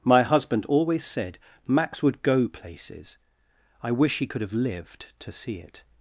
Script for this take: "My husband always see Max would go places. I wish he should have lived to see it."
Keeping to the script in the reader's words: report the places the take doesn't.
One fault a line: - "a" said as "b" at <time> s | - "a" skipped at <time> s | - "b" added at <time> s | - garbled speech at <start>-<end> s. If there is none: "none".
- "see" said as "said" at 1.1 s
- "should" said as "could" at 4.2 s